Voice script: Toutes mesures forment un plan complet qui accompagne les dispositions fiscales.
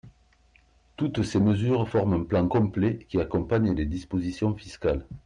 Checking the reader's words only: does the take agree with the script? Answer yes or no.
no